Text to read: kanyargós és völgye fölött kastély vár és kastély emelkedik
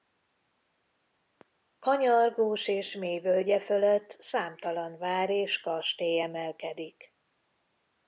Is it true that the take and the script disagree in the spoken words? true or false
true